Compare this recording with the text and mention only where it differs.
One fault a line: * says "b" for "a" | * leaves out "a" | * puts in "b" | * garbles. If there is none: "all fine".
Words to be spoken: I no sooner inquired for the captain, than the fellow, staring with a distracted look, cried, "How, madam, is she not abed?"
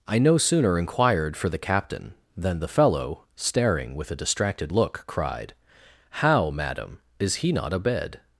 * says "he" for "she"